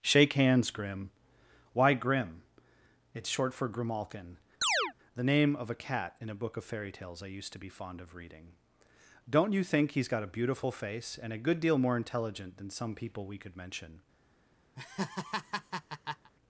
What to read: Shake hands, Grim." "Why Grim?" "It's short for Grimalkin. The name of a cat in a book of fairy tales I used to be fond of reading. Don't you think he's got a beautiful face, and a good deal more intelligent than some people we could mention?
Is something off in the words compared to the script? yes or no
no